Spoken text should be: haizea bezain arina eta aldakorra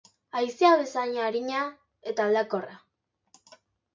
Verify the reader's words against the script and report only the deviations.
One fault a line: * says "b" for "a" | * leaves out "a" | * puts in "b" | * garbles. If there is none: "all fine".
all fine